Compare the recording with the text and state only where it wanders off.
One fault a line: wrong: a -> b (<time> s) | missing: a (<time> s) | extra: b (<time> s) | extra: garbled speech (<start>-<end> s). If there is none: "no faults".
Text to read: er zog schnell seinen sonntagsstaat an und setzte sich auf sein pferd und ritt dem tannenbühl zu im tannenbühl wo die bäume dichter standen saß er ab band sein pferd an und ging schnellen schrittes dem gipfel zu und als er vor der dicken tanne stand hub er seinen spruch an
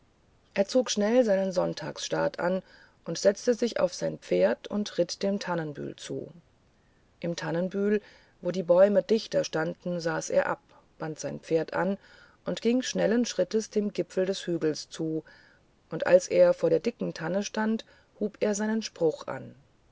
extra: des hügels (14.2 s)